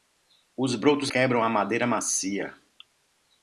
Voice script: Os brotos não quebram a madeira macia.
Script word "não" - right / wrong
wrong